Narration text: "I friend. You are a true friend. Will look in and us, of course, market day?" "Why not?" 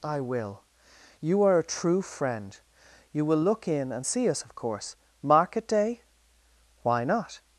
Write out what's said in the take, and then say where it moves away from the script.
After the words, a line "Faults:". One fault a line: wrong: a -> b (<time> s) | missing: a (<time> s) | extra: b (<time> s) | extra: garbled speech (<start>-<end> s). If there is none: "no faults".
"I will. You are a true friend. You will look in and see us, of course, market day?" "Why not?"
Faults:
wrong: friend -> will (0.2 s)
extra: You (3.1 s)
extra: see (4.0 s)